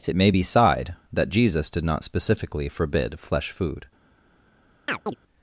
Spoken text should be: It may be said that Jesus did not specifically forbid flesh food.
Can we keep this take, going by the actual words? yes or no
no